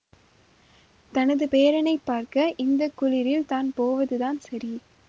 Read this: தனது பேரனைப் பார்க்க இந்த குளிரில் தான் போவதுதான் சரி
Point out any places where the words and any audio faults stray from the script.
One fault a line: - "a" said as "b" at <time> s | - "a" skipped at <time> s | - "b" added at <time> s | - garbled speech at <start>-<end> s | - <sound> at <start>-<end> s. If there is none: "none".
none